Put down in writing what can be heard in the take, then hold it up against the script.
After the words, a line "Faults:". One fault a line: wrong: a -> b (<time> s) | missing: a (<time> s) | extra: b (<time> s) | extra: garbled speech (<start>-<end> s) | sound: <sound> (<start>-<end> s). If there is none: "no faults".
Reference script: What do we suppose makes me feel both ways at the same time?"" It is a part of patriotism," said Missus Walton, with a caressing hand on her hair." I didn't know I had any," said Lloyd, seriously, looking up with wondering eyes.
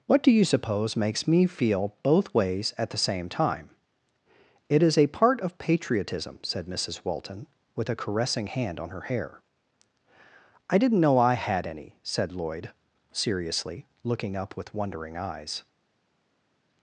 What do you suppose makes me feel both ways at the same time?"" It is a part of patriotism," said Missus Walton, with a caressing hand on her hair." I didn't know I had any," said Lloyd, seriously, looking up with wondering eyes.
Faults:
wrong: we -> you (0.3 s)